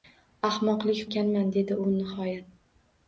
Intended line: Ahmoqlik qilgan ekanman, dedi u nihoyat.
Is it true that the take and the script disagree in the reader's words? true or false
true